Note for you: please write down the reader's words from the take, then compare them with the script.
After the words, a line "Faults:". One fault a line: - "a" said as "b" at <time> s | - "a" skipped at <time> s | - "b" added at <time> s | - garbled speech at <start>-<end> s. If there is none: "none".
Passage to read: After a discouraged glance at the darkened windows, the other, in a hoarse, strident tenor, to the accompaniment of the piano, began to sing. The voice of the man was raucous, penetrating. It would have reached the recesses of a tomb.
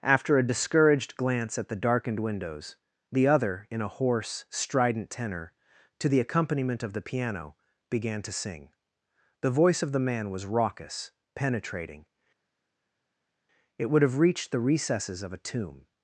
After a discouraged glance at the darkened windows, the other, in a hoarse, strident tenor, to the accompaniment of the piano, began to sing. The voice of the man was raucous, penetrating. It would have reached the recesses of a tomb.
Faults:
none